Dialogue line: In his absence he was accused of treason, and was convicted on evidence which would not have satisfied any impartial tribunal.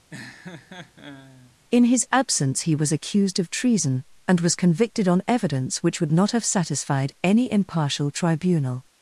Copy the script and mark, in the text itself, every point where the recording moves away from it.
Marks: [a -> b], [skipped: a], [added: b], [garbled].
In his absence he was accused of treason, and was convicted on evidence which would not have satisfied any impartial tribunal.